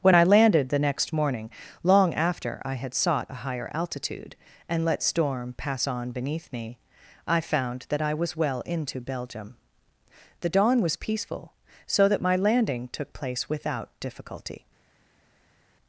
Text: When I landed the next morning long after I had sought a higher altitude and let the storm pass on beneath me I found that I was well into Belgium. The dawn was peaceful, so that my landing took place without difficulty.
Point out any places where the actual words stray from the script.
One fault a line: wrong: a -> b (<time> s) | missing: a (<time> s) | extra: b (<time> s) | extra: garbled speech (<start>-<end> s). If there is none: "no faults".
missing: the (5.0 s)